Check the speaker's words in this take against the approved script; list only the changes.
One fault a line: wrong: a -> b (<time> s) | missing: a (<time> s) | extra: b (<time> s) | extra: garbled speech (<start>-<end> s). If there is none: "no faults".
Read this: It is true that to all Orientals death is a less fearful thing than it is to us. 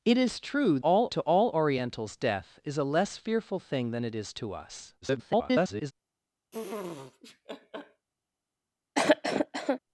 wrong: that -> all (0.8 s)
extra: garbled speech (5.0-5.9 s)